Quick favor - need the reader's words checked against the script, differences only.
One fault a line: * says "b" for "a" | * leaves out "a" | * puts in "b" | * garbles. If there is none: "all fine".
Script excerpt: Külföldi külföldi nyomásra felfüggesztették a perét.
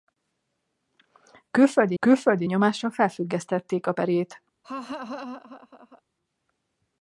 all fine